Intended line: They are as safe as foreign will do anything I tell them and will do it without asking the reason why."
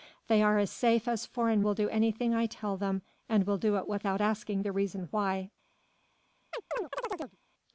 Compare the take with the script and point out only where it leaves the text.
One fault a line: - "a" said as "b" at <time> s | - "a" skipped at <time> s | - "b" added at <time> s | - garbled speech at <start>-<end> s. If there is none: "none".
none